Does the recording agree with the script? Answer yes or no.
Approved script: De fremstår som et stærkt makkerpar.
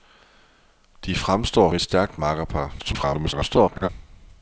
no